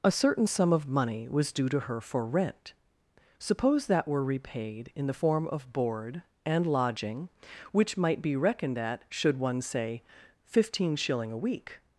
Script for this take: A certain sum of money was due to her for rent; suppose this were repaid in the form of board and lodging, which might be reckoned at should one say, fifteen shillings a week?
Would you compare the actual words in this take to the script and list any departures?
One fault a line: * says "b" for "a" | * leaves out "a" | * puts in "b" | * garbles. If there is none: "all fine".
* says "that" for "this"
* says "shilling" for "shillings"